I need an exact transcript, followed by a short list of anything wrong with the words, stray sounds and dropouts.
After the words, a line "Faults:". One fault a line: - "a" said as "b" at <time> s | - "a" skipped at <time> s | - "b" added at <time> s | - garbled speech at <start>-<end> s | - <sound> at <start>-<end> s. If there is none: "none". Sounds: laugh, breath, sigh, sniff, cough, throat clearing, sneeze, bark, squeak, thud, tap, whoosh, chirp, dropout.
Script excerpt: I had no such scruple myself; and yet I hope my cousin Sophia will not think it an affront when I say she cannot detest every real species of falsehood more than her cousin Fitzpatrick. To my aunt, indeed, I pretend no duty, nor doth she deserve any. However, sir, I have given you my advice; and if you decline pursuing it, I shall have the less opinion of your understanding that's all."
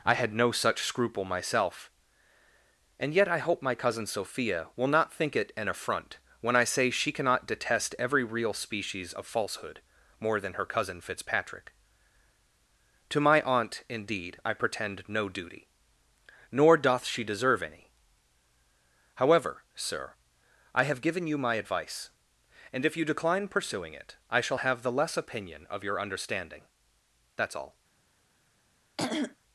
I had no such scruple myself; and yet I hope my cousin Sophia will not think it an affront when I say she cannot detest every real species of falsehood more than her cousin Fitzpatrick. To my aunt, indeed, I pretend no duty, nor doth she deserve any. However, sir, I have given you my advice; and if you decline pursuing it, I shall have the less opinion of your understanding that's all."
Faults:
- throat clearing at 29.0-29.4 s